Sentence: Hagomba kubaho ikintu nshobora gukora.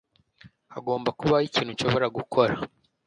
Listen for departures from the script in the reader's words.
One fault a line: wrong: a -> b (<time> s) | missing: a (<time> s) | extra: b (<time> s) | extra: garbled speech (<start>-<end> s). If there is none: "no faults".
no faults